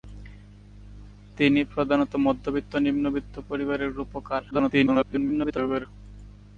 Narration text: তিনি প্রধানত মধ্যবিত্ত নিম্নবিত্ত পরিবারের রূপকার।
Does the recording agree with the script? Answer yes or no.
no